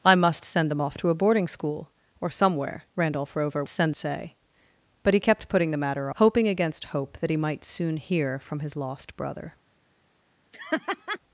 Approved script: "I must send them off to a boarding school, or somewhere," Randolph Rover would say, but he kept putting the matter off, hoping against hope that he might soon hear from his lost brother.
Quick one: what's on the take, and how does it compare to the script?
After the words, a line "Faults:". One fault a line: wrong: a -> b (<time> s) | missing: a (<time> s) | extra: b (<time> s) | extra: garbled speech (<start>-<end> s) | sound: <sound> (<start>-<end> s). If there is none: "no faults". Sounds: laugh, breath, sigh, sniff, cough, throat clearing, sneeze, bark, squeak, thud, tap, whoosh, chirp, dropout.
"I must send them off to a boarding school, or somewhere," Randolph Rover send say, but he kept putting the matter hoping against hope that he might soon hear from his lost brother.
Faults:
wrong: would -> send (3.7 s)
missing: off (6.1 s)
sound: laugh (10.5-11.2 s)